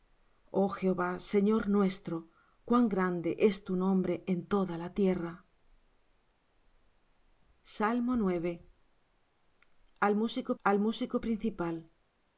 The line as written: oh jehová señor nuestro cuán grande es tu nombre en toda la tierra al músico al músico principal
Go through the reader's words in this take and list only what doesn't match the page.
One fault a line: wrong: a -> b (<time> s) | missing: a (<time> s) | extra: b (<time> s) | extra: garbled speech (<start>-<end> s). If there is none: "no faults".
no faults